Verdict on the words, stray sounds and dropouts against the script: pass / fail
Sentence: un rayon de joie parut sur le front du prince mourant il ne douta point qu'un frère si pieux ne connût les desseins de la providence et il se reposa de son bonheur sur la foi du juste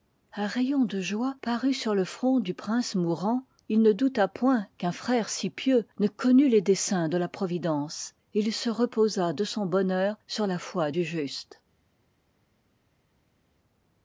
pass